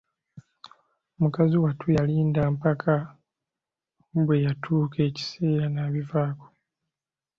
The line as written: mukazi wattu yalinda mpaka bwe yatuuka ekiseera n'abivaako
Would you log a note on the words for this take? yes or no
no